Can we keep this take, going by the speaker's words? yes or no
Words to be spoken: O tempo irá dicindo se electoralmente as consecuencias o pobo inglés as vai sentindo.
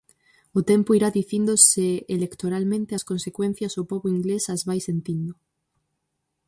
yes